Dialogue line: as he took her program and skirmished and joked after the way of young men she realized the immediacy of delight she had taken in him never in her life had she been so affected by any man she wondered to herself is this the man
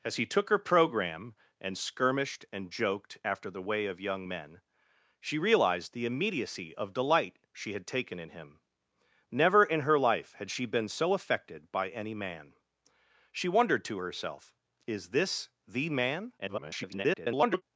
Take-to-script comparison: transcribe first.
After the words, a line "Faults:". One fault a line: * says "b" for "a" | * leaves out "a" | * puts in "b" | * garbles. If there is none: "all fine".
as he took her program and skirmished and joked after the way of young men she realized the immediacy of delight she had taken in him never in her life had she been so affected by any man she wondered to herself is this the man [garbled]
Faults:
* garbles